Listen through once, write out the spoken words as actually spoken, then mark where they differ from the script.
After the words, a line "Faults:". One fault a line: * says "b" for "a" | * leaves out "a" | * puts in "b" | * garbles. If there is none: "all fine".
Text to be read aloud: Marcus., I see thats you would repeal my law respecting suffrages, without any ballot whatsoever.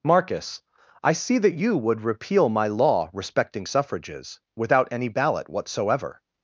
Marcus., I see that you would repeal my law respecting suffrages, without any ballot whatsoever.
Faults:
* says "that" for "thats"